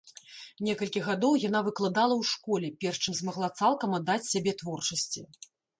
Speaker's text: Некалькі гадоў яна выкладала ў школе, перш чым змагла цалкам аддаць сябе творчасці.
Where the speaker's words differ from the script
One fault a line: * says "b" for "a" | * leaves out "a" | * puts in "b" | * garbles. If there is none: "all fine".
all fine